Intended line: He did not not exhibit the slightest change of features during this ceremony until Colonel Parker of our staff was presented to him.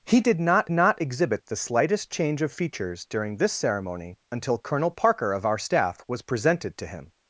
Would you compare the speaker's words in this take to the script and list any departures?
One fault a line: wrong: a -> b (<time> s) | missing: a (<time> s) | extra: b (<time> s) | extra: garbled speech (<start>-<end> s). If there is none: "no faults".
no faults